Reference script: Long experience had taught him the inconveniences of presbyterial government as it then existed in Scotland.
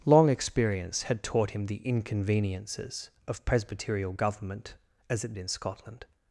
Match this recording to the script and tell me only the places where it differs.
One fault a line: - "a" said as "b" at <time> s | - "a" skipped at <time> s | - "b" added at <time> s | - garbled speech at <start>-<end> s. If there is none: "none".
- "then existed" skipped at 5.3 s